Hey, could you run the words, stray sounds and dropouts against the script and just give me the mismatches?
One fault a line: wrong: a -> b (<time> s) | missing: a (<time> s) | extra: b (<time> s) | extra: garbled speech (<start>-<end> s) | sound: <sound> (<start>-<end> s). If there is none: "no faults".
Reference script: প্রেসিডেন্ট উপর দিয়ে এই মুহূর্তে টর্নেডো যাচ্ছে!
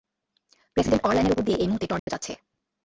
extra: অরল্যানের (1.1 s)
sound: dropout (2.0-2.1 s)